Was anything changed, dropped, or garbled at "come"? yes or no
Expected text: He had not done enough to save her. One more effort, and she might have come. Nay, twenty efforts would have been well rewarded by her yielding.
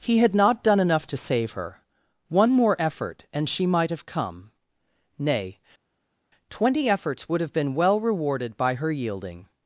no